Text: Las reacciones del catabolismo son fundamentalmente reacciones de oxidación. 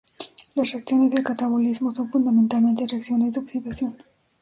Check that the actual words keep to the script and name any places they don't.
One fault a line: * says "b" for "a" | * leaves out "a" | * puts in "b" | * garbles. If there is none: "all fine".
all fine